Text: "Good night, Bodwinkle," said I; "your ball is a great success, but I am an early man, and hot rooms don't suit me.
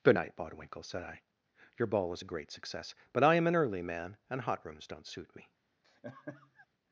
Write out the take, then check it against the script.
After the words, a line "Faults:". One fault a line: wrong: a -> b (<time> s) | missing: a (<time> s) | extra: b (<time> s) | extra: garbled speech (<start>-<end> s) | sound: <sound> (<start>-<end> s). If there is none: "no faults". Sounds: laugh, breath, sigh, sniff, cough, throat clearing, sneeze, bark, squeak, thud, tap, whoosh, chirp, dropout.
"Good night, Bodwinkle," said I; "your ball was a great success, but I am an early man, and hot rooms don't suit me.
Faults:
wrong: is -> was (2.1 s)
sound: laugh (5.8-6.7 s)